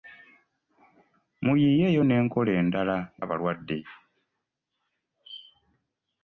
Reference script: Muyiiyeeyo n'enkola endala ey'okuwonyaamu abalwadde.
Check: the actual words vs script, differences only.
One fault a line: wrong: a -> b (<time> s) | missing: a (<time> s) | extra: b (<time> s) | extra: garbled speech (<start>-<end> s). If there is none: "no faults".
missing: ey'okuwonyaamu (3.0 s)